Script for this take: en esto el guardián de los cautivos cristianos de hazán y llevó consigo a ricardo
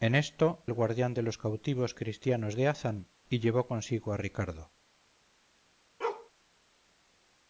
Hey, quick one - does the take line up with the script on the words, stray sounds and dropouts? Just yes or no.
no